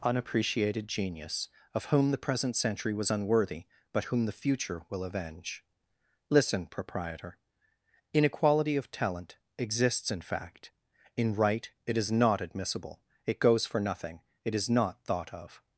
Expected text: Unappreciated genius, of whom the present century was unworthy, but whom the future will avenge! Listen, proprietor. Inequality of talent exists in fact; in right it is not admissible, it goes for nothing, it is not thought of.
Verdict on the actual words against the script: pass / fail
pass